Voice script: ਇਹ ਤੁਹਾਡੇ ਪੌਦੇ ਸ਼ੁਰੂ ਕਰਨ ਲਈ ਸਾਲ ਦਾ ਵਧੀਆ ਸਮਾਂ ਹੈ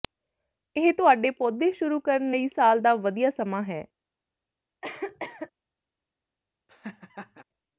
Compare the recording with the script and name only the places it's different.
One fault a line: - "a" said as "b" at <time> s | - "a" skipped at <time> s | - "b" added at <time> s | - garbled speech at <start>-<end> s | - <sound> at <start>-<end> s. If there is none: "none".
- cough at 4.8-5.5 s
- laugh at 6.7-7.4 s